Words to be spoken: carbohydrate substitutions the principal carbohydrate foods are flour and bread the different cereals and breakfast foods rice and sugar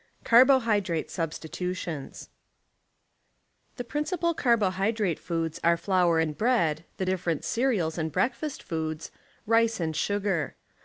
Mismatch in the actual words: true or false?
false